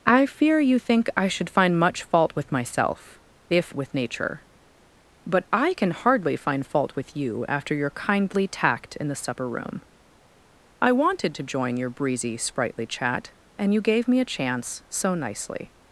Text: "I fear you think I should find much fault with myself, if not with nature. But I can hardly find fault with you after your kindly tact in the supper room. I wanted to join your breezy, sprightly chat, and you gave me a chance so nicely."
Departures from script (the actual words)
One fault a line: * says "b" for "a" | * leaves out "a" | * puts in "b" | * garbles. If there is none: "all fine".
* leaves out "not"